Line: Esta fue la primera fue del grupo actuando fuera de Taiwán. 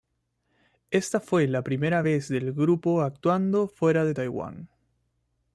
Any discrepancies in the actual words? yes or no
yes